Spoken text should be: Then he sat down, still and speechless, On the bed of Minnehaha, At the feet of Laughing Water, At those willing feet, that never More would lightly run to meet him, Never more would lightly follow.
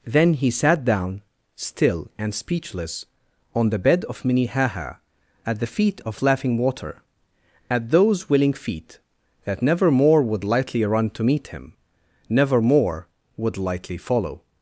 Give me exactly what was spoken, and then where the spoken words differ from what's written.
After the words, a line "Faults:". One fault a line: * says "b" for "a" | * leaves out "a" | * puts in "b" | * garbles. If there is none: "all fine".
Then he sat down, still and speechless, On the bed of Minnehaha, At the feet of Laughing Water, At those willing feet, that never More would lightly run to meet him, Never more would lightly follow.
Faults:
all fine